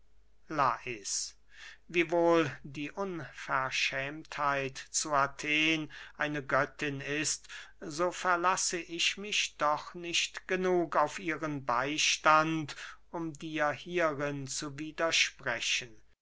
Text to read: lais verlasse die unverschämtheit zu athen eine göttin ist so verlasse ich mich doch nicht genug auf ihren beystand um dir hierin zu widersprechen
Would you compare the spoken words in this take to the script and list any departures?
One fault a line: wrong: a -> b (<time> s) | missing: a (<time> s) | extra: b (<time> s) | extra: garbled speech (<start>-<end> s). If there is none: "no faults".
wrong: verlasse -> wiewohl (1.9 s)